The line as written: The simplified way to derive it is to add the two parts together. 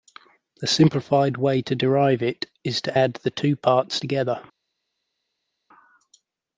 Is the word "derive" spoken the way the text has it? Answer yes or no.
yes